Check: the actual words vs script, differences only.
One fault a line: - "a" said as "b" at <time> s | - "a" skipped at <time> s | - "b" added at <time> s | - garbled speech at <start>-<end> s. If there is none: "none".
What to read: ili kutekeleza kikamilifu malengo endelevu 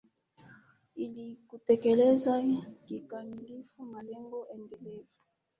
none